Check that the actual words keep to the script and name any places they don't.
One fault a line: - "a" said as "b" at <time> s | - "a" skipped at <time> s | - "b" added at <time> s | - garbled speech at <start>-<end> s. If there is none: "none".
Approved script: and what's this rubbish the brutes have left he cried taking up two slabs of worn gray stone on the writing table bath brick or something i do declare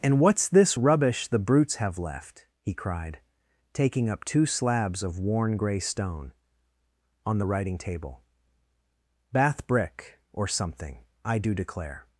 none